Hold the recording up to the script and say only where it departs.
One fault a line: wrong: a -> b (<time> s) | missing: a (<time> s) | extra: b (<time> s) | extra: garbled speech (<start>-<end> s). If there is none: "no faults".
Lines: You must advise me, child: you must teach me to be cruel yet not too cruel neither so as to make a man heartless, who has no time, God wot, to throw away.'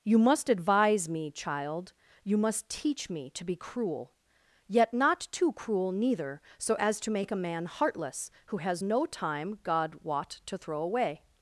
no faults